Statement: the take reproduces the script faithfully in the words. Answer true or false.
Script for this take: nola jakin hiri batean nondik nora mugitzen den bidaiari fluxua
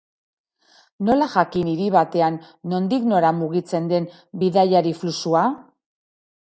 true